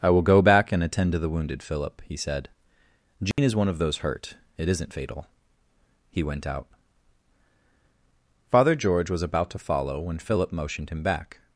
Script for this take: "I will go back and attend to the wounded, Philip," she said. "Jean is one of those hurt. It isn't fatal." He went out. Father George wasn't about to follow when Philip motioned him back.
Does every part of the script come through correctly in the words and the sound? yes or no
no